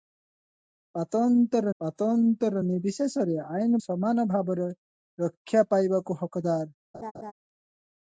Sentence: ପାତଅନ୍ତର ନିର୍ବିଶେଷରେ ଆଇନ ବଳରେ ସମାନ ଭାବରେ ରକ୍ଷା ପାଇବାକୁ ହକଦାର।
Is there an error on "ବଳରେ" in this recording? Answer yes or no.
yes